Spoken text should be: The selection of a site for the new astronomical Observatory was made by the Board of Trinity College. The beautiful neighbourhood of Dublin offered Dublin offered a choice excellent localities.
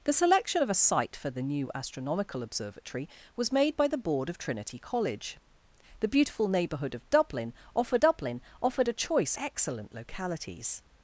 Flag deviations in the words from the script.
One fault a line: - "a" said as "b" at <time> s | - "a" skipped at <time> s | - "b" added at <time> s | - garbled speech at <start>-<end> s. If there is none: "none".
none